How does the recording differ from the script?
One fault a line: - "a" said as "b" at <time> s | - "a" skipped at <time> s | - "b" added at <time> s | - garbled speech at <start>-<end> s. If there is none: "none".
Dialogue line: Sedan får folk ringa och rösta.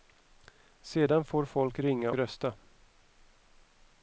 - "och" skipped at 2.1 s